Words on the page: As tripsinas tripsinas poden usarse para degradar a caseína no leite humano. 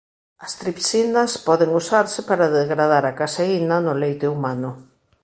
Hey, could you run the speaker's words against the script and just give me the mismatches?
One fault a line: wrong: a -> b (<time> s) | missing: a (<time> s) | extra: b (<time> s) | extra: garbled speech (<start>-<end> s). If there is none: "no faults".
missing: tripsinas (1.3 s)